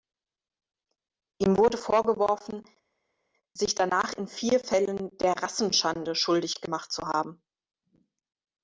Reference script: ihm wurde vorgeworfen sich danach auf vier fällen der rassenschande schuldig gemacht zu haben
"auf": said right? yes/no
no